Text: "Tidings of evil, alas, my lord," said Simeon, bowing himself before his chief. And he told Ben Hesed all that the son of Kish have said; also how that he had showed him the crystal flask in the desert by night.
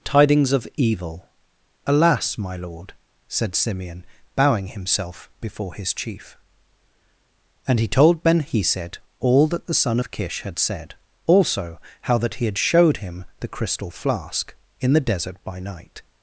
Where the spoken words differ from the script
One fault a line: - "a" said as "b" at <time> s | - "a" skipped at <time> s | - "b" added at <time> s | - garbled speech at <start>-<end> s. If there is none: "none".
- "have" said as "had" at 10.4 s